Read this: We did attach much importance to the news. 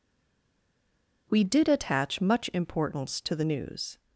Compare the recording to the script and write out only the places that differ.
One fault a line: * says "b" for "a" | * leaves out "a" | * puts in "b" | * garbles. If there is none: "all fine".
all fine